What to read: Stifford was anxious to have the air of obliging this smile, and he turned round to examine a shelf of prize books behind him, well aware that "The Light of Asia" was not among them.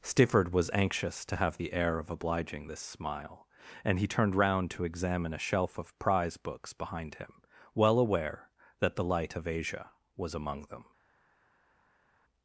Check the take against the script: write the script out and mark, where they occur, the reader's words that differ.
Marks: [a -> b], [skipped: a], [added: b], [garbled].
Stifford was anxious to have the air of obliging this smile, and he turned round to examine a shelf of prize books behind him, well aware that "The Light of Asia" was [skipped: not] among them.